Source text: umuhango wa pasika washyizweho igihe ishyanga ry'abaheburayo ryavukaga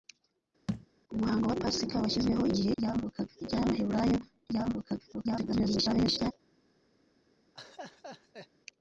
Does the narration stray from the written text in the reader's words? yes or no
yes